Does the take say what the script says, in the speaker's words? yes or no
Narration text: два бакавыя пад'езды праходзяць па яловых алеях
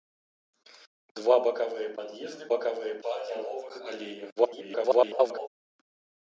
no